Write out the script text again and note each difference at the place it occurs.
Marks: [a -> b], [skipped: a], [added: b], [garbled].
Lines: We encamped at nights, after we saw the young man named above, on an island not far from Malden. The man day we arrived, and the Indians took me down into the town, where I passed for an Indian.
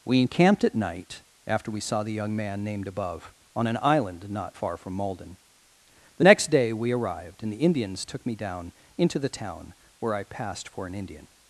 We encamped at [nights, -> night] after we saw the young man named above, on an island not far from Malden. The [man -> next] day we arrived, and the Indians took me down into the town, where I passed for an Indian.